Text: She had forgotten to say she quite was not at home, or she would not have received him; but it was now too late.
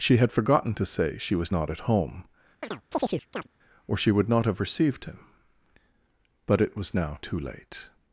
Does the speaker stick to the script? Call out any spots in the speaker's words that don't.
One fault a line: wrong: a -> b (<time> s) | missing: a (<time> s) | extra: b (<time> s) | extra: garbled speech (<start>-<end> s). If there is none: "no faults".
missing: quite (1.4 s)